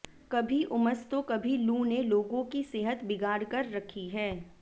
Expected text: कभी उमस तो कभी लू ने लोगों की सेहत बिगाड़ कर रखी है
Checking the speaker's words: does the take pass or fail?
pass